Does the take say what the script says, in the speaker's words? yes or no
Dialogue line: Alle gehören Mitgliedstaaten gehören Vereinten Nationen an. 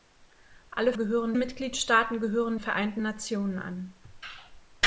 yes